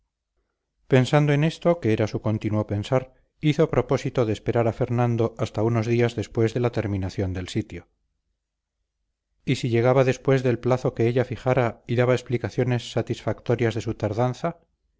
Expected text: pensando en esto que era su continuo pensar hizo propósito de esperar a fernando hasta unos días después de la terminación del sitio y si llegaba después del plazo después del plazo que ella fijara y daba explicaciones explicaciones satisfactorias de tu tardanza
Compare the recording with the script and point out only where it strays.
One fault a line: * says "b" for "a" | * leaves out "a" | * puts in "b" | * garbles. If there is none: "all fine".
* leaves out "después del plazo"
* leaves out "explicaciones"
* says "su" for "tu"